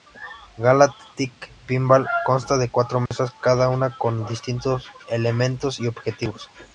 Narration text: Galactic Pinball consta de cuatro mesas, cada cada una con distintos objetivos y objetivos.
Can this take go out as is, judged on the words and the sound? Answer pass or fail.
fail